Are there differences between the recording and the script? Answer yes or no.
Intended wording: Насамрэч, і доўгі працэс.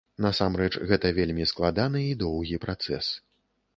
yes